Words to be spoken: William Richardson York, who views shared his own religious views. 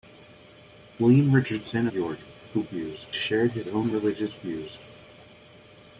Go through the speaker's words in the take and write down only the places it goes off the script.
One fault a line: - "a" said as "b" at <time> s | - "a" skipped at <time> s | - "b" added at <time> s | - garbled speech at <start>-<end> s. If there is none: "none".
none